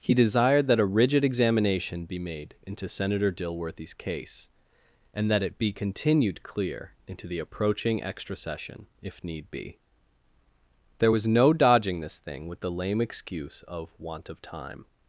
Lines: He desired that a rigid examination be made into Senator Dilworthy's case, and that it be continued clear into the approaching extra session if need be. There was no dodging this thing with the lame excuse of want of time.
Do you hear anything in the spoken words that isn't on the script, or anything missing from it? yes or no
no